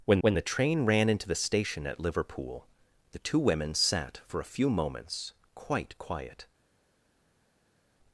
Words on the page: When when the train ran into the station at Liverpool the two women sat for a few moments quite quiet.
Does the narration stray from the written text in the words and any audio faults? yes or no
no